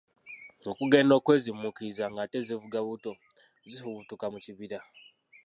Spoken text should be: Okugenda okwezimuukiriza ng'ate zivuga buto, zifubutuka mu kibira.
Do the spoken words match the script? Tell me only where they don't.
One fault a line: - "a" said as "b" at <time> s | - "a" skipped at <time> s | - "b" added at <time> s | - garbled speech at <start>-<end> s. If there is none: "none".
none